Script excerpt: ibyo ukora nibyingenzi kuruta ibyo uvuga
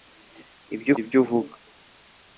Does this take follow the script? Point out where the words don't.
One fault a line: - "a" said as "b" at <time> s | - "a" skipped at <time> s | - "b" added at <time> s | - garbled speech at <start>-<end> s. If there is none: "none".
- "ukora nibyingenzi kuruta" skipped at 0.9 s